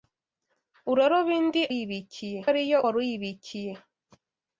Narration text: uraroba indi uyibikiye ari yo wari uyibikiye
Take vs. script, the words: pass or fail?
pass